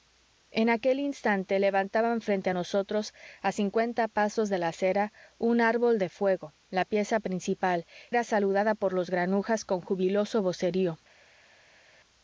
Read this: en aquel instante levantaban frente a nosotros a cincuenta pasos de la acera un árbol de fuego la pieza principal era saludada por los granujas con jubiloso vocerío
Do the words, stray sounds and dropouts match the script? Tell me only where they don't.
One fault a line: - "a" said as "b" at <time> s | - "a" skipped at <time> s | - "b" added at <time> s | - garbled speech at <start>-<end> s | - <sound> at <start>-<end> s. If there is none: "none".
none